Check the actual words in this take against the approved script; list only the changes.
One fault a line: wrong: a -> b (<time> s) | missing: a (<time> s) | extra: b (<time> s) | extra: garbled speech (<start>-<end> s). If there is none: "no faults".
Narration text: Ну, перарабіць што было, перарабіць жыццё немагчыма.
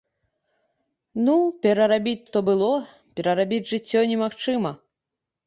no faults